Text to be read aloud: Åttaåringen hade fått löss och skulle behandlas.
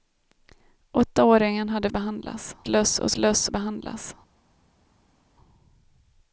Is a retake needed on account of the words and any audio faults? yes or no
yes